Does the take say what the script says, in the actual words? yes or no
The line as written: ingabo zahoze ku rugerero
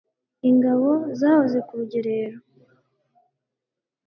yes